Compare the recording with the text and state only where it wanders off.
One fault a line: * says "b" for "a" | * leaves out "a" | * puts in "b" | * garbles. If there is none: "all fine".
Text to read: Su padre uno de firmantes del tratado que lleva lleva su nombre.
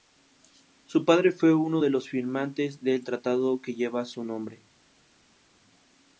* puts in "fue"
* puts in "los"
* leaves out "lleva"